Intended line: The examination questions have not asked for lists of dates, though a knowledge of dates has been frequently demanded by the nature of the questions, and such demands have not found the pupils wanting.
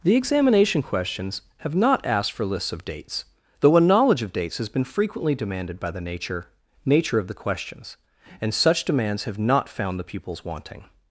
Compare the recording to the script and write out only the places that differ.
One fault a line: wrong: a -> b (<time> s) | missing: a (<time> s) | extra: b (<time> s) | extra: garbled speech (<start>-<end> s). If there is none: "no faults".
extra: nature (6.8 s)